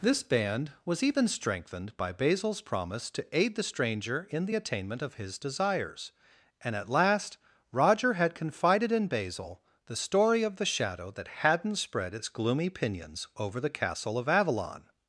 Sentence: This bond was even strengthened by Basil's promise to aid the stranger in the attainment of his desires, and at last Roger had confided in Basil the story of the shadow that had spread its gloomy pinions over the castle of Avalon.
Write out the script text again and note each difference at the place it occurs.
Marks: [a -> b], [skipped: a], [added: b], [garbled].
This [bond -> band] was even strengthened by Basil's promise to aid the stranger in the attainment of his desires, and at last Roger had confided in Basil the story of the shadow that [had -> hadn't] spread its gloomy pinions over the castle of Avalon.